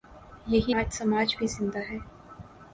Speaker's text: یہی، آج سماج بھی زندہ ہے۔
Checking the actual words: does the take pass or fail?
pass